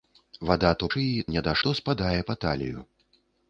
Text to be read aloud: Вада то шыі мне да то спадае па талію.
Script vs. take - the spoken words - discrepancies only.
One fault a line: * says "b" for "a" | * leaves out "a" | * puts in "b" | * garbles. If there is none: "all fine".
all fine